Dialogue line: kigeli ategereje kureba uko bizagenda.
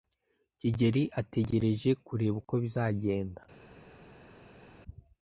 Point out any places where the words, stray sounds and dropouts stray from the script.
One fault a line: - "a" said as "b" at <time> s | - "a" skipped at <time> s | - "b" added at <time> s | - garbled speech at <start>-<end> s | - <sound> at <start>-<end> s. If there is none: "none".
none